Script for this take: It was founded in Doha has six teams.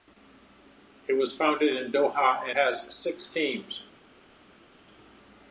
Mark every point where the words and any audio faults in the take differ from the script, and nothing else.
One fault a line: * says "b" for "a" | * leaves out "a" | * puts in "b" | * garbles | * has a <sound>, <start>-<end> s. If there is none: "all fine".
all fine